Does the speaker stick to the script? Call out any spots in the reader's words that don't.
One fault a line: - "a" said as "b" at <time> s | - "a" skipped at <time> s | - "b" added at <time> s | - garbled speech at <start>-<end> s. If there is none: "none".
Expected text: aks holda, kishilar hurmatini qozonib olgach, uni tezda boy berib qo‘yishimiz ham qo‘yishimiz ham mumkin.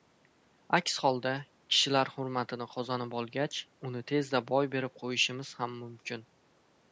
- "qo‘yishimiz ham" skipped at 5.8 s